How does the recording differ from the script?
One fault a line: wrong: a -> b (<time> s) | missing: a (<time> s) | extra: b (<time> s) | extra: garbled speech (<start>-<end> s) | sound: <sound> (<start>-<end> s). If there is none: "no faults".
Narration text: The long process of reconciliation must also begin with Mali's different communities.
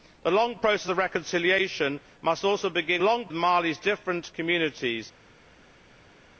wrong: with -> long (3.0 s)